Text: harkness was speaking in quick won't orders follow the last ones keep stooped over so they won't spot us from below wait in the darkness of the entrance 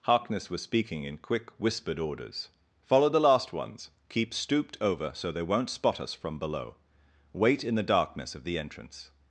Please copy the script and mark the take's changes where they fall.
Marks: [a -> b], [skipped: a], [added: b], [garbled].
harkness was speaking in quick [won't -> whispered] orders follow the last ones keep stooped over so they won't spot us from below wait in the darkness of the entrance